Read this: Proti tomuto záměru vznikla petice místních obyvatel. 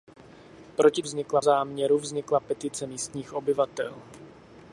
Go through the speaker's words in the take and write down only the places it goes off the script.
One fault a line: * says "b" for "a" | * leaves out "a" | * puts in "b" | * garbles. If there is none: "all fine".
* says "vznikla" for "tomuto"